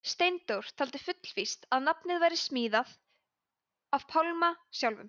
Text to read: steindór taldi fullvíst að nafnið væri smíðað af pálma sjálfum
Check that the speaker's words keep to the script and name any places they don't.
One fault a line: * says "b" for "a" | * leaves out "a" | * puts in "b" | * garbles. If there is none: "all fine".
all fine